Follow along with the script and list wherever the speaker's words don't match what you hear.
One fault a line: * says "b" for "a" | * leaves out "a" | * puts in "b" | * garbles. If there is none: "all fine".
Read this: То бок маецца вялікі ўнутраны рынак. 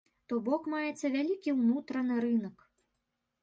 all fine